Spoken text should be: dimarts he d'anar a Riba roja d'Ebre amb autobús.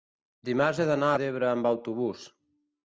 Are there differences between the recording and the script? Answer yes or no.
yes